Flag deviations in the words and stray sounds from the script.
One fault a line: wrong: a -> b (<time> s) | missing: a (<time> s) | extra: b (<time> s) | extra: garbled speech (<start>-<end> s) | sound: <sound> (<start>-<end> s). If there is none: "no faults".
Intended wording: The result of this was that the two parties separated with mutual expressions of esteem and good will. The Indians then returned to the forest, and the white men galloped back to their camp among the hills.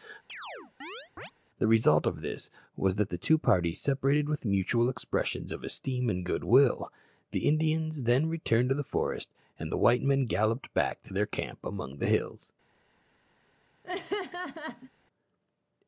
sound: chirp (0.3-1.3 s)
sound: laugh (13.8-14.9 s)